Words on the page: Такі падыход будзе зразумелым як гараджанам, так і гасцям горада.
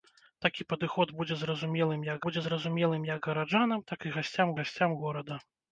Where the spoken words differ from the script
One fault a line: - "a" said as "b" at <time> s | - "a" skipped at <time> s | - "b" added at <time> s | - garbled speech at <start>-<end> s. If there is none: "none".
- "будзе зразумелым як" added at 2.3 s
- "гасцям" added at 4.6 s